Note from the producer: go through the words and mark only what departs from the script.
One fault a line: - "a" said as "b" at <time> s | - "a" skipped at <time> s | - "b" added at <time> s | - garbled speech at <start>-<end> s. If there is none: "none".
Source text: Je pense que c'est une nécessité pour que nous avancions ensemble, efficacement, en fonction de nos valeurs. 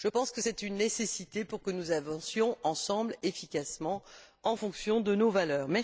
none